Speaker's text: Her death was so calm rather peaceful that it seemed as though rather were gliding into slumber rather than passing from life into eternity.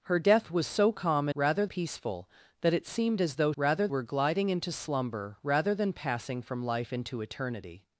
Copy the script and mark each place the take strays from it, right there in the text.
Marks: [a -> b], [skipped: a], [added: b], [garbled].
Her death was so calm rather peaceful that it seemed as though rather were gliding into slumber rather than passing from life into eternity.